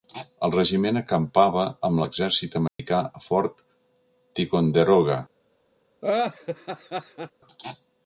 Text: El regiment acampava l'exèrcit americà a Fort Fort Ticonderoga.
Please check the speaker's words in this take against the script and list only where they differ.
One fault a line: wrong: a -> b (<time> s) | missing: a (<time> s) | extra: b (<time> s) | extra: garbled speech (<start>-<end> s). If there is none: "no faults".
extra: amb (1.9 s)
missing: Fort (3.6 s)